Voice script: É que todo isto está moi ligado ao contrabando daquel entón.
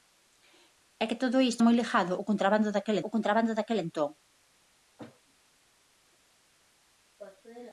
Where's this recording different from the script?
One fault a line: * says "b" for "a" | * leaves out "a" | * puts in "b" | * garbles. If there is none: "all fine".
* leaves out "está"
* puts in "ao contrabando daquel"